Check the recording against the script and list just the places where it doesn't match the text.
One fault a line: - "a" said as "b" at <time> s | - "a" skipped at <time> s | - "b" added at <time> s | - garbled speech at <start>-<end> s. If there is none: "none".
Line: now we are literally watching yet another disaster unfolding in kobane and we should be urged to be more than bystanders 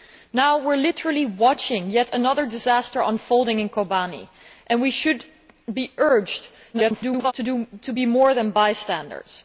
- garbled speech at 6.7-7.3 s